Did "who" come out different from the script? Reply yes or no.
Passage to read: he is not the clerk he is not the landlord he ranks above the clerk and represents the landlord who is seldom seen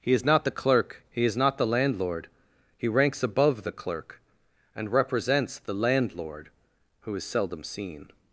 no